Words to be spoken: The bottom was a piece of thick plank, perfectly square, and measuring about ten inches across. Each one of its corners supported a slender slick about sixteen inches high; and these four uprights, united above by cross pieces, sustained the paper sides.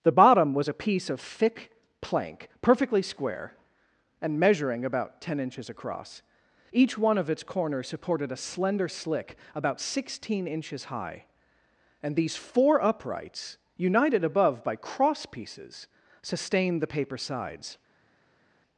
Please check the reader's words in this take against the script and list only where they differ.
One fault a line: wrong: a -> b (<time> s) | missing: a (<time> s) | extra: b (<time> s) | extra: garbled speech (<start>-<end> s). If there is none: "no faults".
no faults